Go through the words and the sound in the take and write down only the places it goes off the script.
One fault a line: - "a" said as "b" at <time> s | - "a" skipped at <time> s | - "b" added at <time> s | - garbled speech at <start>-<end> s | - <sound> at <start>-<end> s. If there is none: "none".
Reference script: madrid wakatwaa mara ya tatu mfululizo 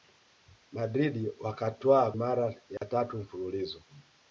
- dropout at 2.8-2.8 s